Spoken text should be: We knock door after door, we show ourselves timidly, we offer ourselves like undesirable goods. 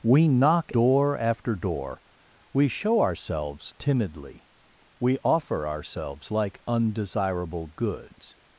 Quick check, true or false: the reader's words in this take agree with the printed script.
true